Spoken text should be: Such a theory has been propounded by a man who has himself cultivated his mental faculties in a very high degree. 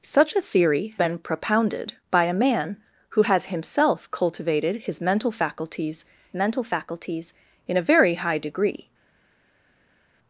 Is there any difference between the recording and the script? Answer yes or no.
yes